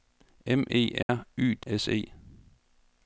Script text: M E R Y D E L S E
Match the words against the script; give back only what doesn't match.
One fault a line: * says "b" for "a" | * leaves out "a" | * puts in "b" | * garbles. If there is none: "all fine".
* leaves out "E L"